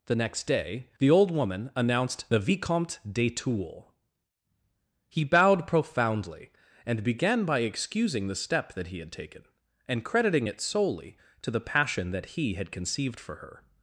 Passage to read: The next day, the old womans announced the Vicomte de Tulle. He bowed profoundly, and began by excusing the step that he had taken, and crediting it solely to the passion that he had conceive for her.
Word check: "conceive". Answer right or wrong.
wrong